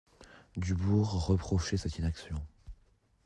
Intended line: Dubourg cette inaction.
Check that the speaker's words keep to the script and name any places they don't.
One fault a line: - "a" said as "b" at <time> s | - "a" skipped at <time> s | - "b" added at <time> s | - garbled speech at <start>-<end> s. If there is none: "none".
- "reprochait" added at 1.3 s